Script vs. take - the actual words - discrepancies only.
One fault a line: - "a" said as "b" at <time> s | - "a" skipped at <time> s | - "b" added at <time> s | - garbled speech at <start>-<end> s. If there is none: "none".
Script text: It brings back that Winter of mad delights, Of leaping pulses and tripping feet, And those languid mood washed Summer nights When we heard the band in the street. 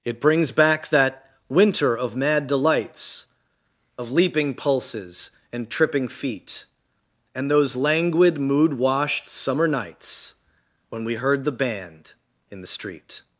none